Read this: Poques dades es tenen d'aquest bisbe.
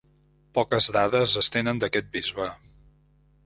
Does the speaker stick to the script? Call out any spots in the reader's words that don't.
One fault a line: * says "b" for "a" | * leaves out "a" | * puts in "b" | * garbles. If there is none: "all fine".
all fine